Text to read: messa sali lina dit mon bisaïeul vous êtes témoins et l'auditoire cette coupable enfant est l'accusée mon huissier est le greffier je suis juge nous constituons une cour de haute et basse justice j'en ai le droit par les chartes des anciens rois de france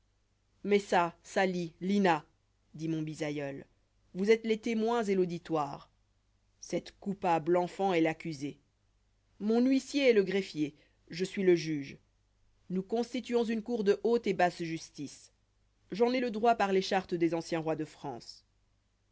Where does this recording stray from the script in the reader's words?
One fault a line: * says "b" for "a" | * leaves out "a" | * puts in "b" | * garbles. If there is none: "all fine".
* puts in "les"
* puts in "le"